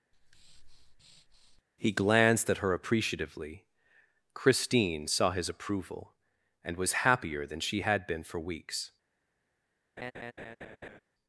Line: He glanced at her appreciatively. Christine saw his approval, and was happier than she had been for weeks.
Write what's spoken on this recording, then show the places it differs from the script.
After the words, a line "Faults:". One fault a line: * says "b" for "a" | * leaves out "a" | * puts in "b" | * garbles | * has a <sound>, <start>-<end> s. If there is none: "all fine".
He glanced at her appreciatively. Christine saw his approval, and was happier than she had been for weeks.
Faults:
* has a breath, 0.1-1.6 s
* has a laugh, 10.0-11.0 s